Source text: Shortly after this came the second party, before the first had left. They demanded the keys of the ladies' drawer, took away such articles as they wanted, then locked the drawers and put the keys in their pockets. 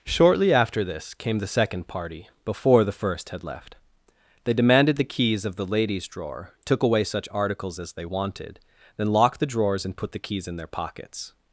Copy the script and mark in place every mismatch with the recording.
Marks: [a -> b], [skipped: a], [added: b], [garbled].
Shortly after this came the second party, before the first had left. They demanded the keys of the ladies' drawer, took away such articles as they wanted, then locked the drawers and put the keys in their pockets.